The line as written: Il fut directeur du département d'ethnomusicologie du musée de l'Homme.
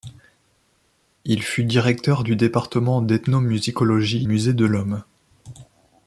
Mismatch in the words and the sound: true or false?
true